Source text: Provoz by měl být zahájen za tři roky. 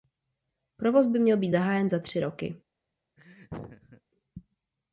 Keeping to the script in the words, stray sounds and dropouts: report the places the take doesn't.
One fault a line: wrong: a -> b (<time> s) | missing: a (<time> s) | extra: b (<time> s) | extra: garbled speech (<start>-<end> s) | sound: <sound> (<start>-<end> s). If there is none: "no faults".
sound: laugh (3.2-4.0 s)